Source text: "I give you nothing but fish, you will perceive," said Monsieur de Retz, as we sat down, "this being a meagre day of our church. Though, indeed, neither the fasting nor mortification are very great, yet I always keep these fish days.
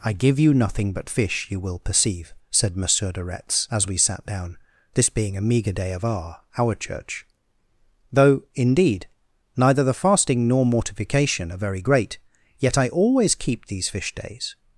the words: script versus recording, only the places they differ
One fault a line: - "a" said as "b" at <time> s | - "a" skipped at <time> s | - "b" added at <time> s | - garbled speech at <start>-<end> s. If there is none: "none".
- "our" added at 6.6 s